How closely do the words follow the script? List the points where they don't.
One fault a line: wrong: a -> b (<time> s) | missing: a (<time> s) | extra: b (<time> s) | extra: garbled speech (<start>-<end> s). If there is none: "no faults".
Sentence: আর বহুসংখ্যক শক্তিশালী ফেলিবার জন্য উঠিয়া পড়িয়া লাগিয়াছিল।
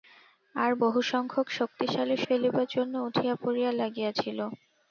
no faults